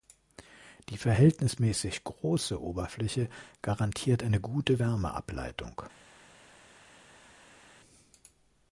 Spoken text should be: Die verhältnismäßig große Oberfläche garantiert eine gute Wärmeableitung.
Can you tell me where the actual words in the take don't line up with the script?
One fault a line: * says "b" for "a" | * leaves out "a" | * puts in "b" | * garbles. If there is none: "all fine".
all fine